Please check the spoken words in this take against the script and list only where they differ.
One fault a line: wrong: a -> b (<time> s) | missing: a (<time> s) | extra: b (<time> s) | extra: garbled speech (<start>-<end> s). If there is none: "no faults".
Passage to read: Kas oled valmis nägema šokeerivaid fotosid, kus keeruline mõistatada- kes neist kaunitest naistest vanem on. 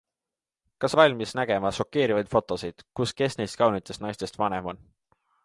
missing: oled (0.9 s)
missing: keeruline mõistatada (3.1 s)